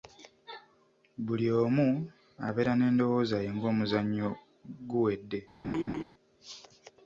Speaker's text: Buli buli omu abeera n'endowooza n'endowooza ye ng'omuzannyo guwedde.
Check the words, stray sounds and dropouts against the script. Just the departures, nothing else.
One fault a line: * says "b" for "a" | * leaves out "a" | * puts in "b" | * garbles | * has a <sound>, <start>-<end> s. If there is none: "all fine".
* leaves out "buli"
* leaves out "n'endowooza"
* has a laugh, 5.6-6.0 s